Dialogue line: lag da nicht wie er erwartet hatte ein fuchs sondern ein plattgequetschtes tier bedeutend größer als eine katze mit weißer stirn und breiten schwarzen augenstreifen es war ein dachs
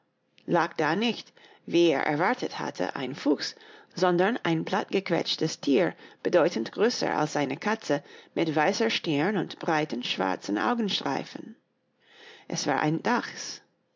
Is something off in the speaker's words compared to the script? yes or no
no